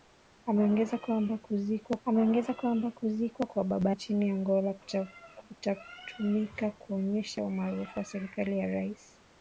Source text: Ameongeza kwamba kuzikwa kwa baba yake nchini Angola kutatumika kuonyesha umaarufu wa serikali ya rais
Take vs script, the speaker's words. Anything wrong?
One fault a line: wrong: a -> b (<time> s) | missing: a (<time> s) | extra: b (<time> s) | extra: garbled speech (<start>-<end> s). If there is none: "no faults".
extra: ameongeza kwamba kuzikwa (2.0 s)
missing: yake (3.9 s)